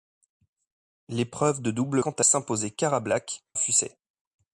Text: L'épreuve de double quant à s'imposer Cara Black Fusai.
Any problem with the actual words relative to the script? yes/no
no